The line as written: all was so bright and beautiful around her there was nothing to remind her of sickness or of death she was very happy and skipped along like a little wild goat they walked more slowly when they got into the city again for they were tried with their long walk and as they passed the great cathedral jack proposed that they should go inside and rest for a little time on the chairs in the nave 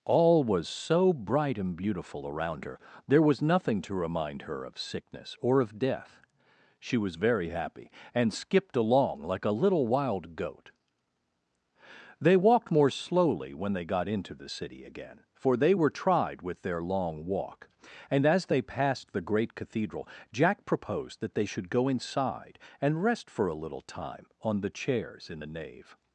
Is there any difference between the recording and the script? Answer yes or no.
no